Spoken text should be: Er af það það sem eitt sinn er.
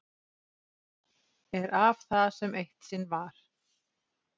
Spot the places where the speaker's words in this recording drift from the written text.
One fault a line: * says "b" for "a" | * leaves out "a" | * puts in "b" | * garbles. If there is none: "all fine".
* leaves out "það"
* says "var" for "er"